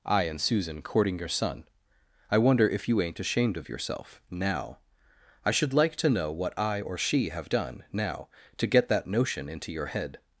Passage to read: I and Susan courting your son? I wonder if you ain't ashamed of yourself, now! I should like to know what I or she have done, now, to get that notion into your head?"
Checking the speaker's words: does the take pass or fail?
pass